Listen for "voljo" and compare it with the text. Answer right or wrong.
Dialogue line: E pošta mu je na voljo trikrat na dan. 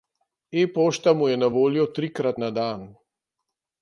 right